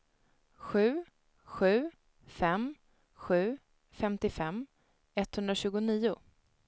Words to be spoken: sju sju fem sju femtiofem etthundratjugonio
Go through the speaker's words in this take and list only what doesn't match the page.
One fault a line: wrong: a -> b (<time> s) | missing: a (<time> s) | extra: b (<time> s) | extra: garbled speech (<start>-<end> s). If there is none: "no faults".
no faults